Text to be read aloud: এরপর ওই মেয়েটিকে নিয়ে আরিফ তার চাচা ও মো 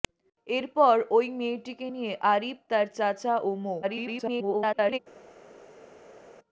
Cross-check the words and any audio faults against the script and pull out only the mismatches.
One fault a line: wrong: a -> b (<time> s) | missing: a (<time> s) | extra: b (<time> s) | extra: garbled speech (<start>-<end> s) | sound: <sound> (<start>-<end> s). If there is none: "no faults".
extra: garbled speech (3.8-5.0 s)